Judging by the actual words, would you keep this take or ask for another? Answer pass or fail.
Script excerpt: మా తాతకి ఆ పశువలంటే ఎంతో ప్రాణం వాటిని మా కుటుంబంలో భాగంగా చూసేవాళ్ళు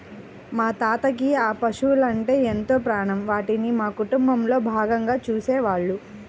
pass